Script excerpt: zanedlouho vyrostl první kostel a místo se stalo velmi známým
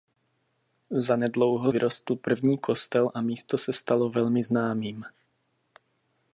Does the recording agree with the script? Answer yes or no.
yes